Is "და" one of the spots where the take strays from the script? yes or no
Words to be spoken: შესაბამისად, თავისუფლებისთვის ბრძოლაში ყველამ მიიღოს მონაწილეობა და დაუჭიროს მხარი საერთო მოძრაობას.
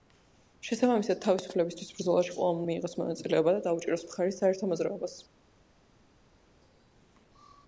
no